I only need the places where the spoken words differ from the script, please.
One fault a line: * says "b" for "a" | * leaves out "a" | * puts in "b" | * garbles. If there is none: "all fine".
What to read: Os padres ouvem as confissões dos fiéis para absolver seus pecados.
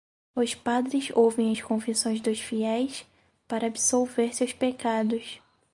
all fine